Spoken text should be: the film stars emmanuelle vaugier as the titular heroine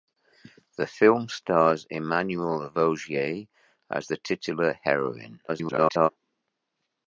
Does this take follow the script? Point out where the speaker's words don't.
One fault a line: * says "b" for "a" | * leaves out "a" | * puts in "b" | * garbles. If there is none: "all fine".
* garbles